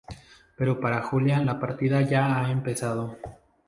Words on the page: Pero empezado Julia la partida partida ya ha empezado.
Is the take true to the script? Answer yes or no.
no